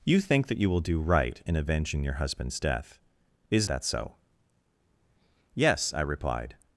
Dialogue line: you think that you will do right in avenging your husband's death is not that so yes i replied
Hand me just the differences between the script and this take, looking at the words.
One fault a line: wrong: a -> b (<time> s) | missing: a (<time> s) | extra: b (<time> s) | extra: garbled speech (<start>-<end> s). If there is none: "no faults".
missing: not (3.7 s)